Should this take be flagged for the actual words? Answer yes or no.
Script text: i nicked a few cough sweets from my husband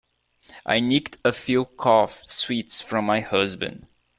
no